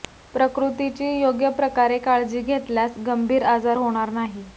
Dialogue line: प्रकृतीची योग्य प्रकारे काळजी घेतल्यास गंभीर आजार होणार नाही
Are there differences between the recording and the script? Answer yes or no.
no